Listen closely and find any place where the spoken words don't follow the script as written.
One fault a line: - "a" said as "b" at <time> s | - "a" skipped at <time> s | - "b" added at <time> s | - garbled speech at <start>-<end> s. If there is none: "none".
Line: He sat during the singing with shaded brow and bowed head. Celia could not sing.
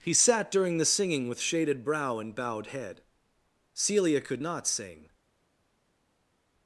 none